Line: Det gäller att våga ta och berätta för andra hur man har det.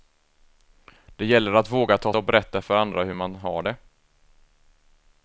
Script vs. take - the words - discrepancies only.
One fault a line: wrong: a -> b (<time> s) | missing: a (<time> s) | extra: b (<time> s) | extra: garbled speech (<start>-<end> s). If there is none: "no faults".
no faults